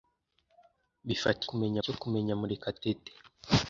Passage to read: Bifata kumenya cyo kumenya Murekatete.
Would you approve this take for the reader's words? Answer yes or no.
yes